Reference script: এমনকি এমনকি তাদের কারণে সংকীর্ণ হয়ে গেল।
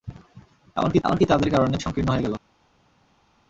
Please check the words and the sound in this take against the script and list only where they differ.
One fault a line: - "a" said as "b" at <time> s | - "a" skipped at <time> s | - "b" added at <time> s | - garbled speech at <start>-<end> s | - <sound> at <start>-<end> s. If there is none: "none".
none